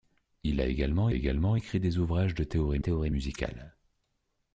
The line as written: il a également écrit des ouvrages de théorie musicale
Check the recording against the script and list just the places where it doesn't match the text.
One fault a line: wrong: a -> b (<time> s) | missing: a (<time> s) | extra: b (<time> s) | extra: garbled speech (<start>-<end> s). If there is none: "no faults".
extra: également (1.1 s)
extra: théorie (2.8 s)